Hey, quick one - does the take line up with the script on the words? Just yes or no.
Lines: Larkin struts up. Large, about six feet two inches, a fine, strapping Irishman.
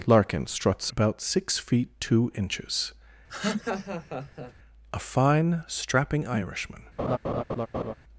no